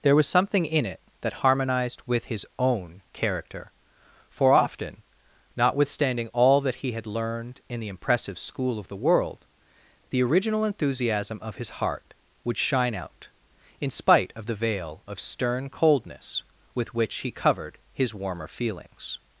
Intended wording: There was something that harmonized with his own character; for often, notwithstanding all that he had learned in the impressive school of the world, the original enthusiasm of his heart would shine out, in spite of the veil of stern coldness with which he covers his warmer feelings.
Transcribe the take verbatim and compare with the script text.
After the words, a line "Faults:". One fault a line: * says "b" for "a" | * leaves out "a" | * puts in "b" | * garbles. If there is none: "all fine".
There was something in it that harmonized with his own character; for often, notwithstanding all that he had learned in the impressive school of the world, the original enthusiasm of his heart would shine out, in spite of the veil of stern coldness with which he covered his warmer feelings.
Faults:
* puts in "in it"
* says "covered" for "covers"